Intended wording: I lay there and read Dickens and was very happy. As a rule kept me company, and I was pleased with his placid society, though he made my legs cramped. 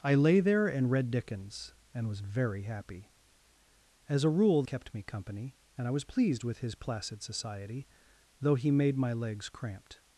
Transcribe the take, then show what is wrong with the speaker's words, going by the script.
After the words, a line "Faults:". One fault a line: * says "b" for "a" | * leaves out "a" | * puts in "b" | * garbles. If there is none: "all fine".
I lay there and read Dickens and was very happy. As a rule kept me company, and I was pleased with his placid society, though he made my legs cramped.
Faults:
all fine